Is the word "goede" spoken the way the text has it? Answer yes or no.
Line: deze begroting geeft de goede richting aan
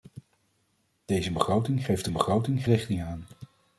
no